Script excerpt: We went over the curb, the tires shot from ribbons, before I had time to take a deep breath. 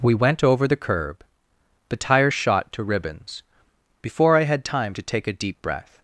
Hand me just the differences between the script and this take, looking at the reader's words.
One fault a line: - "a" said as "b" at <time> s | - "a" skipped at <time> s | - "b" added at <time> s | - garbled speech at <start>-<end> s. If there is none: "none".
- "from" said as "to" at 2.7 s